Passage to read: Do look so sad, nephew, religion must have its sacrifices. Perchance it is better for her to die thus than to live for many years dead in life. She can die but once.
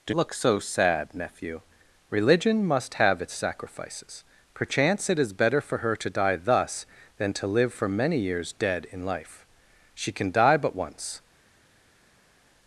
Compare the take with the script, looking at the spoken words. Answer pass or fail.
pass